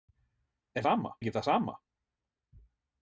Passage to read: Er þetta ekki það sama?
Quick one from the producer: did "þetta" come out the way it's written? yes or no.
no